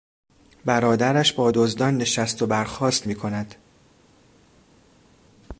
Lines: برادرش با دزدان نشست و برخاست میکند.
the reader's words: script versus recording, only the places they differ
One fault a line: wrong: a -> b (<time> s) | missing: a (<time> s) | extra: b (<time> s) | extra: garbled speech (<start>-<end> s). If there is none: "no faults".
no faults